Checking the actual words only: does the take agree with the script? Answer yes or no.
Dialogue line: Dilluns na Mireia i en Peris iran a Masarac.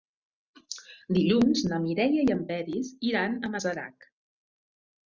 yes